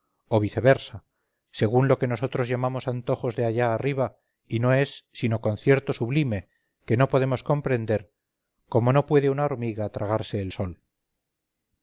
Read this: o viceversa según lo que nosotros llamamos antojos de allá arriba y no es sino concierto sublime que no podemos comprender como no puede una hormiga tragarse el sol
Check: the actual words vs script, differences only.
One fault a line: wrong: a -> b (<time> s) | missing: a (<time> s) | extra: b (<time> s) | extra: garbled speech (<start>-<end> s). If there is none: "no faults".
no faults